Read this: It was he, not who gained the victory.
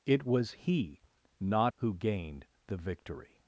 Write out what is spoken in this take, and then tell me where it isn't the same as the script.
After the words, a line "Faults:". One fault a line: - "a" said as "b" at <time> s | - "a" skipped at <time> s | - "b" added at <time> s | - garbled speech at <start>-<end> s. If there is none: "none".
It was he, not who gained the victory.
Faults:
none